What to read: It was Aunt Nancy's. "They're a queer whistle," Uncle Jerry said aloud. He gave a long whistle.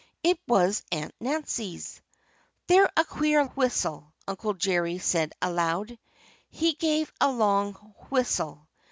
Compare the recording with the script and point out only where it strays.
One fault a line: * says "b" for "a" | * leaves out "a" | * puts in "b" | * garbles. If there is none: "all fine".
all fine